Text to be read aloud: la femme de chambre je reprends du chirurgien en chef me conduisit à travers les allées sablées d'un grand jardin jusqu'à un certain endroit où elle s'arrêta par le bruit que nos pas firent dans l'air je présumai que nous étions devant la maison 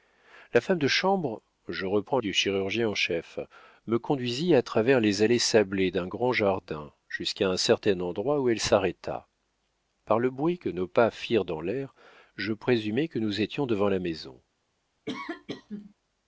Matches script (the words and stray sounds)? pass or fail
fail